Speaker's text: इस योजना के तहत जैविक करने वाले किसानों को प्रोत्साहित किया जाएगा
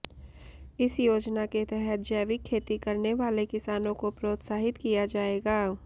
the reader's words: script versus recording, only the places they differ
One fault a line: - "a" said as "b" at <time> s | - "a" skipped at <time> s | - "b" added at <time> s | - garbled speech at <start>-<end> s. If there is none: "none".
- "खेती" added at 2.4 s